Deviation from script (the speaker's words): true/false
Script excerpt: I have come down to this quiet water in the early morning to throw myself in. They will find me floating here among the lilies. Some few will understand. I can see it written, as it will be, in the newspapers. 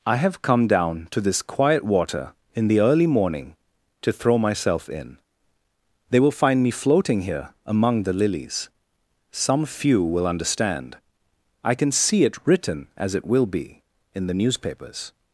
false